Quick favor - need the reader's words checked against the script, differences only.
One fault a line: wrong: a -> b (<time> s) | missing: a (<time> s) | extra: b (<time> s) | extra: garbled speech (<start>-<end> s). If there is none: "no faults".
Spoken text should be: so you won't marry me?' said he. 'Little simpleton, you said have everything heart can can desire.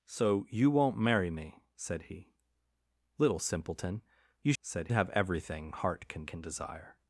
no faults